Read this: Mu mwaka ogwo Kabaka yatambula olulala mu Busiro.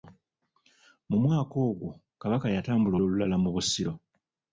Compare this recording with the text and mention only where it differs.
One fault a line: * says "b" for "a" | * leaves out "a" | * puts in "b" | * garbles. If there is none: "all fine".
all fine